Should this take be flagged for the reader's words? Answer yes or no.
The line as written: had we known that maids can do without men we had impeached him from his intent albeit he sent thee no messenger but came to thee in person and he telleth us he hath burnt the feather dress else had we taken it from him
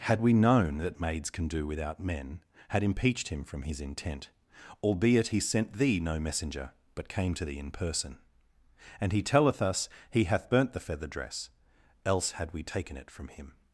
yes